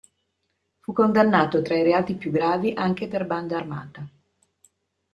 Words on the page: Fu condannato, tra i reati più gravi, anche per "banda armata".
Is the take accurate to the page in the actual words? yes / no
yes